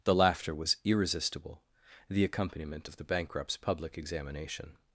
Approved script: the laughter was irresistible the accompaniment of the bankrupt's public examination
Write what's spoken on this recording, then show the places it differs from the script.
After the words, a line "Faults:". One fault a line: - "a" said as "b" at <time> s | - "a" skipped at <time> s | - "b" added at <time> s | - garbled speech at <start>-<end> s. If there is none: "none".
the laughter was irresistible the accompaniment of the bankrupt's public examination
Faults:
none